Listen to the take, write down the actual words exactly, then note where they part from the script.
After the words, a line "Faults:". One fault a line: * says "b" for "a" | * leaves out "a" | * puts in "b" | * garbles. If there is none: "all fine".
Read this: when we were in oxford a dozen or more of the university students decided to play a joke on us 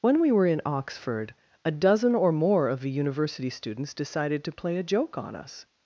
when we were in oxford a dozen or more of the university students decided to play a joke on us
Faults:
all fine